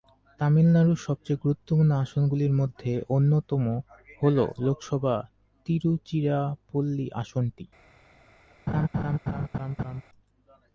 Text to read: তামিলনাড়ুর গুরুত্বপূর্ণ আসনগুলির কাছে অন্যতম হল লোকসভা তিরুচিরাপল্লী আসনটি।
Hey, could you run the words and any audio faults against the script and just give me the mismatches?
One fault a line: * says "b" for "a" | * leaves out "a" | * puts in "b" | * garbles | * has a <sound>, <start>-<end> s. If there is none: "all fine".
* puts in "সবচেয়ে"
* says "মধ্যে" for "কাছে"
* has a laugh, 8.7-10.0 s